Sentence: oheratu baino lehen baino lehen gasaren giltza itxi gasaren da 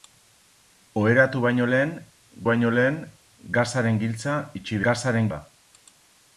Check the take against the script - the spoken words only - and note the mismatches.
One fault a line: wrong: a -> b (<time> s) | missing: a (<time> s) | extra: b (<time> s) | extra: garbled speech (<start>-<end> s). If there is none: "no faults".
no faults